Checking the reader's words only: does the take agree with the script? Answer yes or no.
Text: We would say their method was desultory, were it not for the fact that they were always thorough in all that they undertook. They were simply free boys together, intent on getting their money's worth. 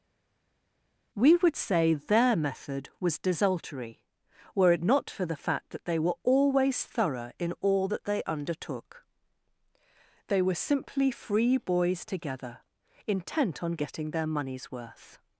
yes